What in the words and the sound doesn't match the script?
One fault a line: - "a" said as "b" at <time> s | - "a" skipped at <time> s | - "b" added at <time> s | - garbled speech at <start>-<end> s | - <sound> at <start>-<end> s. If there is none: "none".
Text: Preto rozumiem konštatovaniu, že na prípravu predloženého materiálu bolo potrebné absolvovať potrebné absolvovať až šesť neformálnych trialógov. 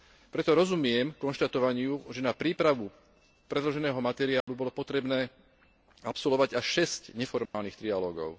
- dropout at 4.4-4.5 s
- "potrebné absolvovať" skipped at 6.5 s
- dropout at 7.5-7.5 s